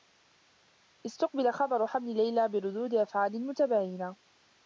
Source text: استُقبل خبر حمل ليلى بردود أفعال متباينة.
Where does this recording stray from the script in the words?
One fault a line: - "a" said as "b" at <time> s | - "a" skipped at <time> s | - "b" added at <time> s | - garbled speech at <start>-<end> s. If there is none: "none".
none